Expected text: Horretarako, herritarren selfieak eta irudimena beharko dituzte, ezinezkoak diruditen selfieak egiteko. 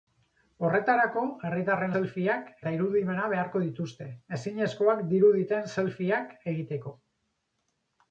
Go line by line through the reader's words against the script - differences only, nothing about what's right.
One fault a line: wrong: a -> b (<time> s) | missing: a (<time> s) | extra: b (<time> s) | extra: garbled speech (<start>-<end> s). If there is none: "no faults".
no faults